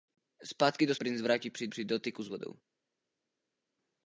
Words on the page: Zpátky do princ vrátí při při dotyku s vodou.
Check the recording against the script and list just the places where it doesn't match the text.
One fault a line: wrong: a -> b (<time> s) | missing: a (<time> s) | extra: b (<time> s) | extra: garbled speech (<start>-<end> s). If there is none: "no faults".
no faults